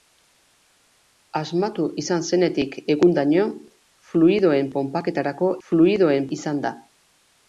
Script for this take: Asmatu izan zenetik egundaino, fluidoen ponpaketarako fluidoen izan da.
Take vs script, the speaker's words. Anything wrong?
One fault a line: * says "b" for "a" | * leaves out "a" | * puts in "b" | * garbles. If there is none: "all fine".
all fine